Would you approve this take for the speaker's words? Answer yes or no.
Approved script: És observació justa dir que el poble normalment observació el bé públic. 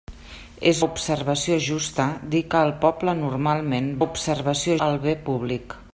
yes